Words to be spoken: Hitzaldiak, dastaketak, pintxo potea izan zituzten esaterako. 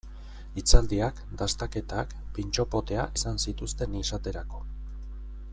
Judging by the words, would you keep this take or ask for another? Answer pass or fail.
pass